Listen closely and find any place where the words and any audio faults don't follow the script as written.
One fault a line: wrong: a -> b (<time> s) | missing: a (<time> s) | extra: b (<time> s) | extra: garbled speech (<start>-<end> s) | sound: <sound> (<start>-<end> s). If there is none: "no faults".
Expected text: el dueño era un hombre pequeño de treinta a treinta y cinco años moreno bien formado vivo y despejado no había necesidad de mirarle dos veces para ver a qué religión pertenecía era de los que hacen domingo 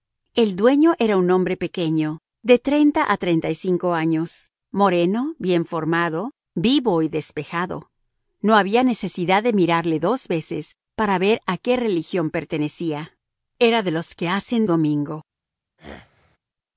sound: throat clearing (15.8-16.4 s)